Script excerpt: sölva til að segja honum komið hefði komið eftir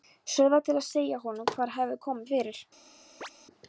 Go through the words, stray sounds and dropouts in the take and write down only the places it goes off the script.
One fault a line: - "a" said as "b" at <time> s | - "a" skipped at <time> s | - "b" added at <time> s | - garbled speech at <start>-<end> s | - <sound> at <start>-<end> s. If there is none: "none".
- "komið" said as "hvað" at 1.6 s
- "eftir" said as "fyrir" at 2.4 s
- chirp at 3.2-3.3 s